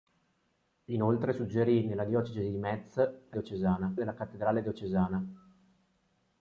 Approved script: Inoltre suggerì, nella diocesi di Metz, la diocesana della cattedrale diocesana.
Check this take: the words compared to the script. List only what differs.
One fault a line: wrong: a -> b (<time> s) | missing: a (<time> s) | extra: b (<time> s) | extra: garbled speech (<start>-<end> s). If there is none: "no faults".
no faults